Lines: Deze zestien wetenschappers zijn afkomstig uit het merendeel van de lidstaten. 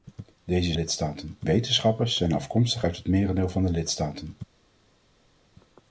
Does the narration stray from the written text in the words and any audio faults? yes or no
yes